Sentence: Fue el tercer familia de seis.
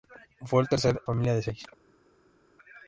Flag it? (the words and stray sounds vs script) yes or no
no